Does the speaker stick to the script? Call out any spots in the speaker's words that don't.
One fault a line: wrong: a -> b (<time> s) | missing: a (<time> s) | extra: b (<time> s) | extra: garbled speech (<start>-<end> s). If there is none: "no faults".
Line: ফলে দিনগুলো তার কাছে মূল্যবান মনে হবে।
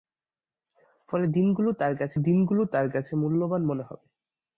extra: দিনগুলো তার কাছে (2.2 s)